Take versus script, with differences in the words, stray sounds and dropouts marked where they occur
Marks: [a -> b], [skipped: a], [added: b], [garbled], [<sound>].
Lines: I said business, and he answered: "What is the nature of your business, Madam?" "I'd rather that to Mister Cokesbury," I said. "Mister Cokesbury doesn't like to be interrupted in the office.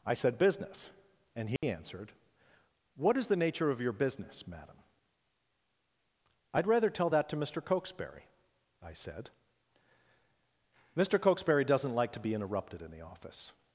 I said business, and he [dropout] answered: "What is the nature of your business, Madam?" "I'd rather [added: tell] that to Mister Cokesbury," I said. "Mister Cokesbury doesn't like to be interrupted in the office.